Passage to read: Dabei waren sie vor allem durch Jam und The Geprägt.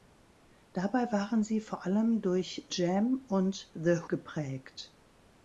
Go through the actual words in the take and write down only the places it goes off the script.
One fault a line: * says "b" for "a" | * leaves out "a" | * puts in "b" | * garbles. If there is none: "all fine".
all fine